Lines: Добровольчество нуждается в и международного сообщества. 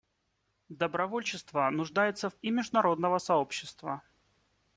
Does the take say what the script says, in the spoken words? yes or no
yes